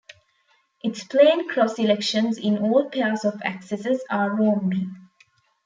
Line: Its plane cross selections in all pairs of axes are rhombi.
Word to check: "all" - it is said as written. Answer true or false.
true